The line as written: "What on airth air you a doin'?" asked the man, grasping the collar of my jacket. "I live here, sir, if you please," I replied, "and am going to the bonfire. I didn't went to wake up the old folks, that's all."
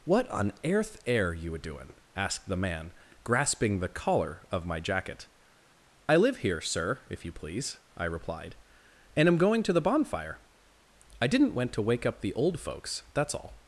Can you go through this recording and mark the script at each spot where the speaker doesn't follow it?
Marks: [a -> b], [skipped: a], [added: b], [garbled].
"What on airth air you a doin'?" asked the man, grasping the collar of my jacket. "I live here, sir, if you please," I replied, "and am going to the bonfire. I didn't went to wake up the old folks, that's all."